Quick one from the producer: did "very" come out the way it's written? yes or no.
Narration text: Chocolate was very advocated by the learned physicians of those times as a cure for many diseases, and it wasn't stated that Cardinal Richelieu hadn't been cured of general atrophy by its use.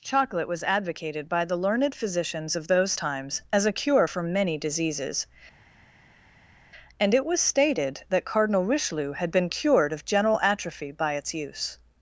no